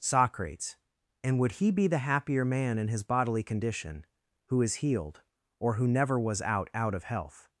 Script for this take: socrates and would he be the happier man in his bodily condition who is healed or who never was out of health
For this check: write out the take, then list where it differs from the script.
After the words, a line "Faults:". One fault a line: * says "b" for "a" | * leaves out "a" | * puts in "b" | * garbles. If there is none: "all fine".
socrates and would he be the happier man in his bodily condition who is healed or who never was out out of health
Faults:
* puts in "out"